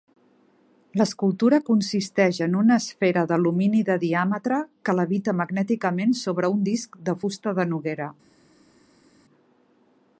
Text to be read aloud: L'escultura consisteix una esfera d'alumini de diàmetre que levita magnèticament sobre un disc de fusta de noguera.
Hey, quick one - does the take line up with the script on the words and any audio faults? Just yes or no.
no